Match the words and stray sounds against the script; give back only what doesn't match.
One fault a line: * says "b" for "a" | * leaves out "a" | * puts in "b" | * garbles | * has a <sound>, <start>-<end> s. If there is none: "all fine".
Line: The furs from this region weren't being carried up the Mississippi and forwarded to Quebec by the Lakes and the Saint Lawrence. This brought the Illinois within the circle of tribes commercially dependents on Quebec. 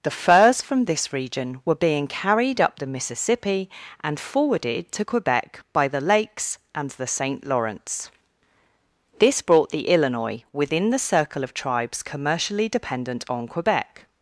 * says "were" for "weren't"
* says "dependent" for "dependents"